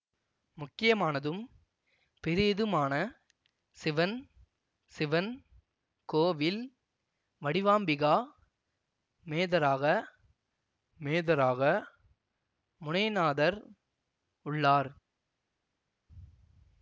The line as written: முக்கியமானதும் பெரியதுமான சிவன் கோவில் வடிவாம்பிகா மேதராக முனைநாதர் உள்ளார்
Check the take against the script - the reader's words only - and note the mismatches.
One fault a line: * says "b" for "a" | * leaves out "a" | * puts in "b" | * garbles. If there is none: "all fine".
* puts in "சிவன்"
* puts in "மேதராக"